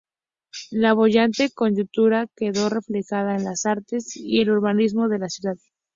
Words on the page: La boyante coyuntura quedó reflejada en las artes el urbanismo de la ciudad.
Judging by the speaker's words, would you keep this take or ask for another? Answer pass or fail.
fail